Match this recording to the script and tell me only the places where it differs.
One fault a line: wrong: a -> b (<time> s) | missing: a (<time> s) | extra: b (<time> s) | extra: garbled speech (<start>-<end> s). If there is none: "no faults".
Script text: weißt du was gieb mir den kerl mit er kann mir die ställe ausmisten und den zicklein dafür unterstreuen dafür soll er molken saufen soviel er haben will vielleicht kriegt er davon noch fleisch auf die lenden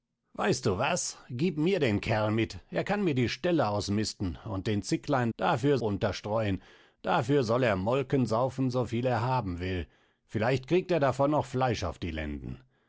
no faults